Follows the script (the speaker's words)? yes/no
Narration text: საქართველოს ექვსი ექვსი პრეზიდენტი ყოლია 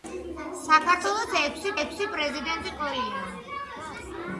yes